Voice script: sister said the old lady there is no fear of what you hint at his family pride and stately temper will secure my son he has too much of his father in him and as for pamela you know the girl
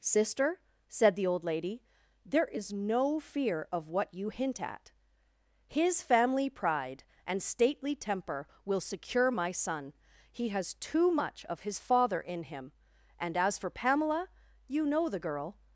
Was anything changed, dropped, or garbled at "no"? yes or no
no